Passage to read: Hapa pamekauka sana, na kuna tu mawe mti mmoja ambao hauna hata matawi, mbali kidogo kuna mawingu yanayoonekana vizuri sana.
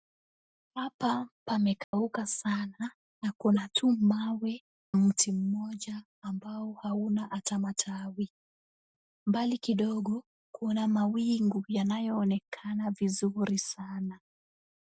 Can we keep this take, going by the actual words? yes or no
yes